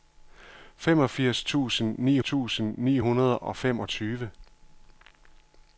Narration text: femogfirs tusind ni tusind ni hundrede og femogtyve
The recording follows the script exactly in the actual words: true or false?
true